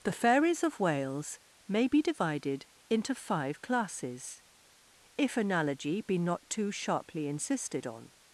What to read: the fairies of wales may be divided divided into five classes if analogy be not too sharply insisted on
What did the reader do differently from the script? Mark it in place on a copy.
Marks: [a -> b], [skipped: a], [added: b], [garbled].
the fairies of wales may be divided [skipped: divided] into five classes if analogy be not too sharply insisted on